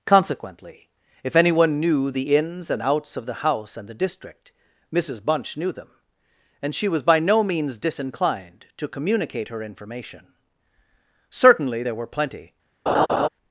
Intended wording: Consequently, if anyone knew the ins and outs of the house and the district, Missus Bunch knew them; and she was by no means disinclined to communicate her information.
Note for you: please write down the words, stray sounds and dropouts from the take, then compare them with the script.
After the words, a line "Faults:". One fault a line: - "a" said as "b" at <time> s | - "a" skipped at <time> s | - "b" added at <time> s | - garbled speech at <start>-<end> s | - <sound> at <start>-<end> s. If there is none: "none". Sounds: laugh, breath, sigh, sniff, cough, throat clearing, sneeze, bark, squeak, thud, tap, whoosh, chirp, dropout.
Consequently, if anyone knew the ins and outs of the house and the district, Missus Bunch knew them; and she was by no means disinclined to communicate her information. Certainly there were plenty
Faults:
- "Certainly there were plenty" added at 11.3 s
- laugh at 12.9-13.3 s